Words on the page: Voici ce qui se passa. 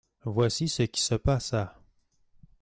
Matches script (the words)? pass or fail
pass